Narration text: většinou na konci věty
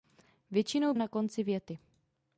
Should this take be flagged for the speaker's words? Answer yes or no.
no